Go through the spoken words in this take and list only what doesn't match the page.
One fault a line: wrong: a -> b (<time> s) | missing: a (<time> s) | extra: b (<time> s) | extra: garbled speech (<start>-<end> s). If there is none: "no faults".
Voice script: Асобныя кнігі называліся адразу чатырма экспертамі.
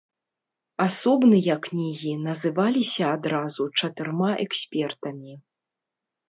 no faults